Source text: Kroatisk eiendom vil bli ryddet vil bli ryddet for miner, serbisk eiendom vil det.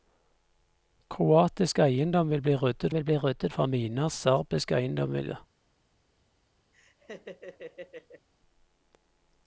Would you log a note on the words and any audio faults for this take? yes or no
yes